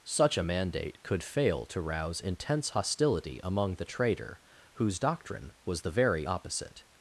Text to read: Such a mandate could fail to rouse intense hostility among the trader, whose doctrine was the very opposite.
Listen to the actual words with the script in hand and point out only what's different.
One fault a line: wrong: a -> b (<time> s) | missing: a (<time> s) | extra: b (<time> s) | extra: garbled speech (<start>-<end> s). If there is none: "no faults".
no faults